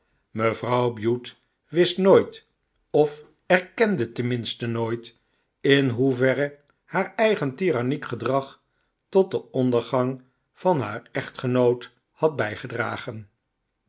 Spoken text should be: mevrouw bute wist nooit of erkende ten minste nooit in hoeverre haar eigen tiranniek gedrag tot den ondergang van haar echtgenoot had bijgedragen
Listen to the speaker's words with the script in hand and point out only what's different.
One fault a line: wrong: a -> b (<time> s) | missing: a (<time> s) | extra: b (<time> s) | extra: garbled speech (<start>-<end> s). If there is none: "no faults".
no faults